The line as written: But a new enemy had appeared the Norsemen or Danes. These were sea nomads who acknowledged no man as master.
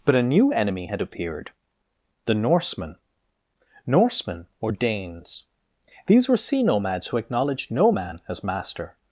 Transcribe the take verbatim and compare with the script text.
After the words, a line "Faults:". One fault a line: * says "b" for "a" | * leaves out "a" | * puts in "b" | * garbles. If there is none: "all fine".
But a new enemy had appeared the Norsemen Norsemen or Danes. These were sea nomads who acknowledged no man as master.
Faults:
* puts in "Norsemen"